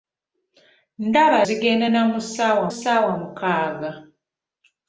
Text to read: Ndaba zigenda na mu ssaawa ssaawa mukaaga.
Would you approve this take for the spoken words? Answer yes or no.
yes